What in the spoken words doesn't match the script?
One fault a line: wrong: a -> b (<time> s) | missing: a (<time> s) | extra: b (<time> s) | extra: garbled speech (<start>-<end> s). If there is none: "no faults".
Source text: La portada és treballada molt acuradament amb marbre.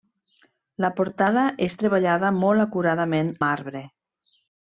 missing: amb (3.3 s)